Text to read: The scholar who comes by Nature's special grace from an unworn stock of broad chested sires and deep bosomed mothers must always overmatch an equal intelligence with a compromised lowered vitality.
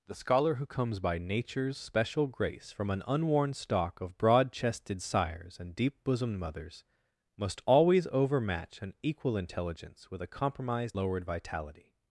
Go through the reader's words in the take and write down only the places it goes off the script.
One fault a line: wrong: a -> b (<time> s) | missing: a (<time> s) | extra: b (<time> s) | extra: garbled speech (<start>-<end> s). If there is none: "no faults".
no faults